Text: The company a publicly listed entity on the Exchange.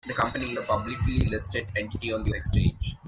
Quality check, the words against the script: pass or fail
pass